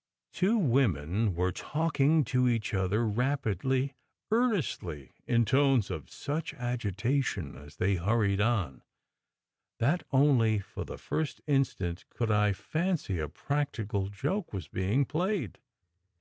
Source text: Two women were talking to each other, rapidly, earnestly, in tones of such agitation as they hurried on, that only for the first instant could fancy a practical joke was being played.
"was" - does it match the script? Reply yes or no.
yes